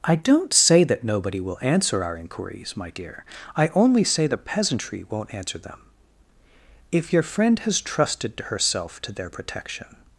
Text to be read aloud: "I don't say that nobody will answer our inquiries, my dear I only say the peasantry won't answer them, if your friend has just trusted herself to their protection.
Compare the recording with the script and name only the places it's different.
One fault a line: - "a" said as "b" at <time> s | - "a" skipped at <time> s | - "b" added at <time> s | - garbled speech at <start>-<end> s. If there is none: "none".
- "just" skipped at 7.8 s